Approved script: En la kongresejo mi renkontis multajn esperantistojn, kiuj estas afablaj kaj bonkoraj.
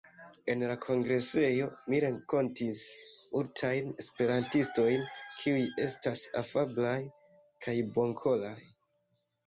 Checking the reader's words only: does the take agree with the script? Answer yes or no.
yes